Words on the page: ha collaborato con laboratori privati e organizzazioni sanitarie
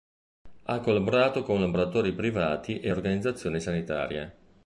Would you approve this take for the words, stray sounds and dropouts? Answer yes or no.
yes